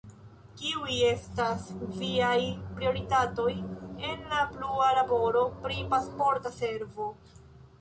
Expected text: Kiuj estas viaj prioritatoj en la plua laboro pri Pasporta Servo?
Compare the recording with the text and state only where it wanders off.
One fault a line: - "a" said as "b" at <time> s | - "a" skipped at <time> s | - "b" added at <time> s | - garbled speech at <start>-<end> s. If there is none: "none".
none